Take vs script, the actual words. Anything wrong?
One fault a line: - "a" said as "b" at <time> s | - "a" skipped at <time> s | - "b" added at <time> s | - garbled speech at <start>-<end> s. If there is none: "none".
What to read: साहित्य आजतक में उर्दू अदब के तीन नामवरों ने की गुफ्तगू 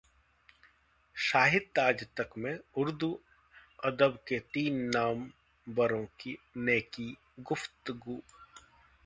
none